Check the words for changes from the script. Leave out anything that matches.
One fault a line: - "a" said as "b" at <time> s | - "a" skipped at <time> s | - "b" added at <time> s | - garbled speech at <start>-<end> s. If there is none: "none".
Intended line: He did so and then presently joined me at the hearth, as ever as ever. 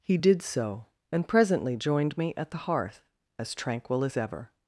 - "then" skipped at 1.3 s
- "ever" said as "tranquil" at 3.5 s